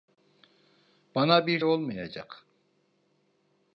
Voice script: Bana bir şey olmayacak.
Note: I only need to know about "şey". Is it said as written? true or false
false